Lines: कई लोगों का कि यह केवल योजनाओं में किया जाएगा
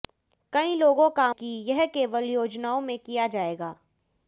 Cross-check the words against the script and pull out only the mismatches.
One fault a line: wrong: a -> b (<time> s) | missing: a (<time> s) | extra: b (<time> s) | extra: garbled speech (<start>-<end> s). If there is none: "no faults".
no faults